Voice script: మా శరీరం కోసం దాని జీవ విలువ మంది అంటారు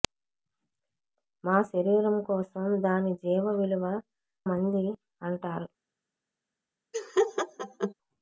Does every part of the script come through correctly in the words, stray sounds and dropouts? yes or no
no